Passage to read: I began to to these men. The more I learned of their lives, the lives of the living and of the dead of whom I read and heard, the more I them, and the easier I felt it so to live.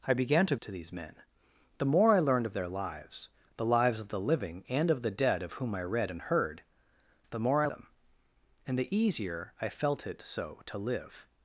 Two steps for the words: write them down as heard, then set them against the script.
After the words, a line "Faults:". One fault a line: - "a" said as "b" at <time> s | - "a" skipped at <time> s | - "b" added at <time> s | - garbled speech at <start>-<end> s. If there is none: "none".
I began to to these men. The more I learned of their lives, the lives of the living and of the dead of whom I read and heard, the more I them, and the easier I felt it so to live.
Faults:
none